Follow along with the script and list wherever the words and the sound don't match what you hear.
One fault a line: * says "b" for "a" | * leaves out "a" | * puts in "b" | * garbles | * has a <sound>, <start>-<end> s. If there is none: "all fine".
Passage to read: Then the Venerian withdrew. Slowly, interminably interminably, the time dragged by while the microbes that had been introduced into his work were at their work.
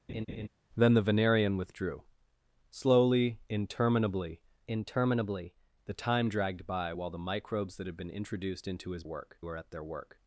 * has a laugh, 0.1-0.5 s